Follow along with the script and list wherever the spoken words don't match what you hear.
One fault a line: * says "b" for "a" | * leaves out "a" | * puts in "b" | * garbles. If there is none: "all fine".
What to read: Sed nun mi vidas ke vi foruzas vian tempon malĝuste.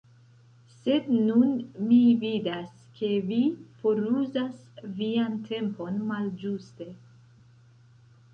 all fine